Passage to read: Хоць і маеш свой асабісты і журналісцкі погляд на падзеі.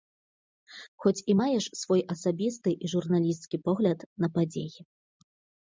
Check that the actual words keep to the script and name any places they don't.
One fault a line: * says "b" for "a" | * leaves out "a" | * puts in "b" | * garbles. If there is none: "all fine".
all fine